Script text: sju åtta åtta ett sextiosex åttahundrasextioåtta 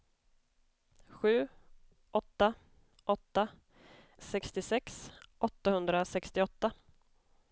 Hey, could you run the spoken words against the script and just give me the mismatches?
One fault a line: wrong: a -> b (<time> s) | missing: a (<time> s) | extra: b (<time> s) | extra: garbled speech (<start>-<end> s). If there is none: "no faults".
missing: ett (3.5 s)